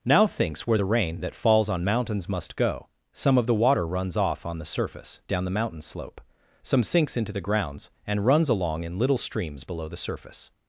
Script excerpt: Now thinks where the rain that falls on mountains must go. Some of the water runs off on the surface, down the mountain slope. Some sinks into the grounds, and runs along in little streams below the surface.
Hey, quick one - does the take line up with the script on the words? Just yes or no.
yes